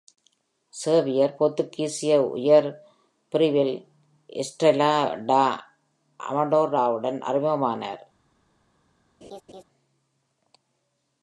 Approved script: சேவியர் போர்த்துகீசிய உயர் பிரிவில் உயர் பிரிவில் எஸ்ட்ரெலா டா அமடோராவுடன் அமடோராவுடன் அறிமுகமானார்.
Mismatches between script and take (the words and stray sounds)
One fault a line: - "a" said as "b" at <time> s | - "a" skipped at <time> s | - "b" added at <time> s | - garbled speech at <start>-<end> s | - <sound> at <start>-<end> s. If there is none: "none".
- "உயர் பிரிவில்" skipped at 3.7 s
- "அமடோராவுடன்" skipped at 7.2 s
- laugh at 9.2-9.6 s